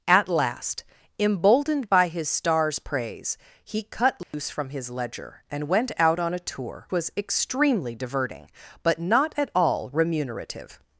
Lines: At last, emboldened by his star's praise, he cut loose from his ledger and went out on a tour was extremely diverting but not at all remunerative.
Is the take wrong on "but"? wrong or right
right